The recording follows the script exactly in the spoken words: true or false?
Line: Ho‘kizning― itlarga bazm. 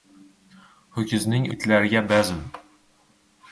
true